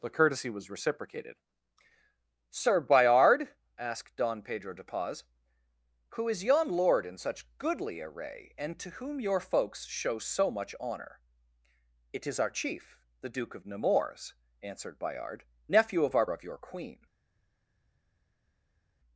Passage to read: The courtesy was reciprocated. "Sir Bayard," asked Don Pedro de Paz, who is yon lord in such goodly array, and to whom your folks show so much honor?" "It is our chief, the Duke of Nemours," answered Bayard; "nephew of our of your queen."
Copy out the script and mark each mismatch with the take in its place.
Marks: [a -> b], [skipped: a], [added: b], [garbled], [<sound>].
The courtesy was reciprocated. "Sir Bayard," asked Don Pedro de Paz, who is yon lord in such goodly array, and to whom your folks show so much honor?" "It is our chief, the Duke of Nemours," answered Bayard; "nephew of our of your queen."